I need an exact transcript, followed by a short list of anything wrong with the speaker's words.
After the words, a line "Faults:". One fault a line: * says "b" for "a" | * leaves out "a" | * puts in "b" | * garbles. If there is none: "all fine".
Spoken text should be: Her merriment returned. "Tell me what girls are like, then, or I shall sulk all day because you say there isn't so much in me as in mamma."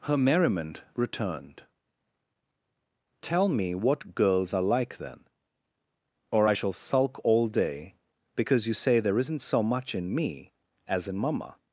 Her merriment returned. "Tell me what girls are like, then, or I shall sulk all day because you say there isn't so much in me as in mamma."
Faults:
all fine